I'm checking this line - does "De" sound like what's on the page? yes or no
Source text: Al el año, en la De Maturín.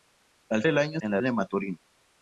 yes